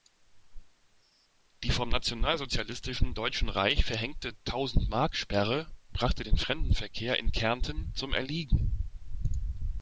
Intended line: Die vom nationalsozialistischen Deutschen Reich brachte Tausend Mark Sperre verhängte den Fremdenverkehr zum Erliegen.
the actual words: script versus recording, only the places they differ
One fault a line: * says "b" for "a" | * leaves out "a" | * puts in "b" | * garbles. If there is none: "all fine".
* says "verhängte" for "brachte"
* says "brachte" for "verhängte"
* puts in "in Kärnten"